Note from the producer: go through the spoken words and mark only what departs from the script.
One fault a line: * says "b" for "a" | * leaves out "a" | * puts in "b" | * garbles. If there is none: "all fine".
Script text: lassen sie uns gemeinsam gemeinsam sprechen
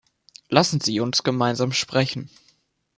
* leaves out "gemeinsam"